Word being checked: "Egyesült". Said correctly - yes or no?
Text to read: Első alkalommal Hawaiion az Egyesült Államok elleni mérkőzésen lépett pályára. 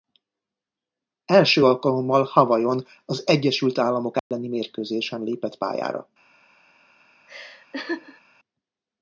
yes